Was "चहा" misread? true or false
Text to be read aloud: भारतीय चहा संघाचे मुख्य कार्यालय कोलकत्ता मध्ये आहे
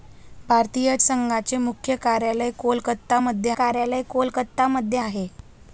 true